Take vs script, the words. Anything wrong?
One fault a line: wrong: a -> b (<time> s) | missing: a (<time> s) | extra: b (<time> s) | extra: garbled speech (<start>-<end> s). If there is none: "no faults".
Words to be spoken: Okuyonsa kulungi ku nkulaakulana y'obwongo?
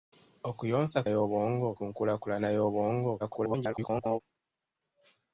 wrong: kulungi -> y'obwongo (1.1 s)
extra: garbled speech (3.2-4.2 s)